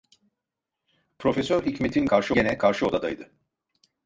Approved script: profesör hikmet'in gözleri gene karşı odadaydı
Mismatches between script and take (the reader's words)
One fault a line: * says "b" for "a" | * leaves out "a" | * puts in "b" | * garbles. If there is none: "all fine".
* says "karşı" for "gözleri"